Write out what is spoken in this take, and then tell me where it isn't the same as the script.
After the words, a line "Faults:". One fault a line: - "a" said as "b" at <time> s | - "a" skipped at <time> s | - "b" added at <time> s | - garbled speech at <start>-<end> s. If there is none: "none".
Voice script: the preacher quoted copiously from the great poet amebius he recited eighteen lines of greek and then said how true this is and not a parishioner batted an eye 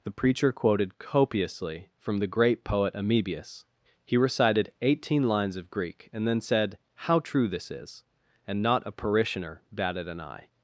the preacher quoted copiously from the great poet amebius he recited eighteen lines of greek and then said how true this is and not a parishioner batted an eye
Faults:
none